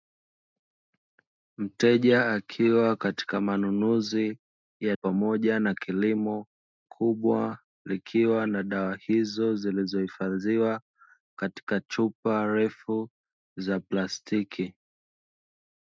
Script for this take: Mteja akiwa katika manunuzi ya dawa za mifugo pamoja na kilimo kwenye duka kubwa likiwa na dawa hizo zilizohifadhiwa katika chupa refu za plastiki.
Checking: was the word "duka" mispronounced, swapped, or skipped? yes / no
yes